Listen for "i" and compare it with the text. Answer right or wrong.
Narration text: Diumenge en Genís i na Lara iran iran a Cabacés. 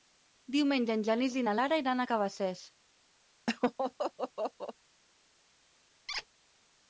right